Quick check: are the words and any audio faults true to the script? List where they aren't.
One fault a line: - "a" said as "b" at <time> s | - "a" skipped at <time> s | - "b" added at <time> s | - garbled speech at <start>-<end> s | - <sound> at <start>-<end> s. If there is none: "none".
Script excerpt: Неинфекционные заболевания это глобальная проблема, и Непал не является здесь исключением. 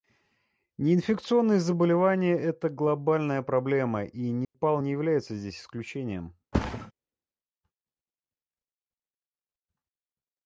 - dropout at 4.4-4.5 s
- thud at 6.5-6.9 s